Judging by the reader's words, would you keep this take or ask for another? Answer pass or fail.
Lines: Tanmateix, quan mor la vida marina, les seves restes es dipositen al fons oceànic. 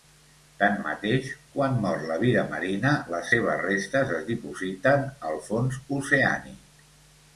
pass